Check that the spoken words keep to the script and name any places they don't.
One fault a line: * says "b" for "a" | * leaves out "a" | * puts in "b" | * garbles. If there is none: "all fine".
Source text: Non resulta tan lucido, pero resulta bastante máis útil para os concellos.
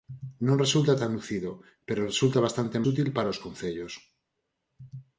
* leaves out "máis"